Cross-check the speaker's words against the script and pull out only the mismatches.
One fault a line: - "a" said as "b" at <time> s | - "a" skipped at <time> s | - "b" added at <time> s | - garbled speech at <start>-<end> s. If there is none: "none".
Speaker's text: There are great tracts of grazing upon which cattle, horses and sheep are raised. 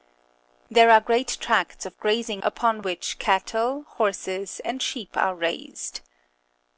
none